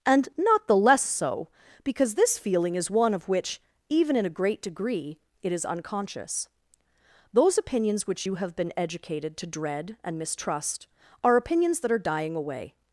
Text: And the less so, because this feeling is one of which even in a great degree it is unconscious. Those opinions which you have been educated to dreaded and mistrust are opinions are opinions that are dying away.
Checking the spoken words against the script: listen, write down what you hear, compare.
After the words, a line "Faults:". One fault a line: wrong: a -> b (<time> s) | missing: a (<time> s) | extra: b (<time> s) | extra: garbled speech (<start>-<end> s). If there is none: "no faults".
And not the less so, because this feeling is one of which even in a great degree it is unconscious. Those opinions which you have been educated to dread and mistrust are opinions that are dying away.
Faults:
extra: not (0.4 s)
wrong: dreaded -> dread (9.5 s)
missing: are opinions (11.8 s)